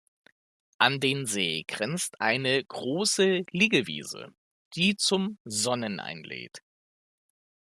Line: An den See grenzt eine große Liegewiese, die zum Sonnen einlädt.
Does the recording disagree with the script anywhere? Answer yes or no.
no